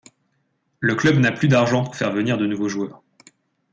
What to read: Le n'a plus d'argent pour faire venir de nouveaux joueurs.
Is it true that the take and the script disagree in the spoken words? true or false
true